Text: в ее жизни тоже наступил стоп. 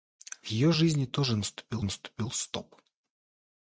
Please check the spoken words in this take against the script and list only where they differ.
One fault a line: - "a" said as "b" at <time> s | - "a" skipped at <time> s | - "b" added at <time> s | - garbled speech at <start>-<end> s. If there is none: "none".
- "наступил" added at 1.8 s